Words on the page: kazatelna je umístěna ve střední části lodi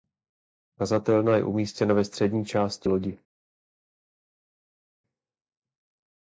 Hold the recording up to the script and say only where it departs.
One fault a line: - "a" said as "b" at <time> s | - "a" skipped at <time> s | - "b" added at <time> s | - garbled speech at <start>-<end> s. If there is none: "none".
none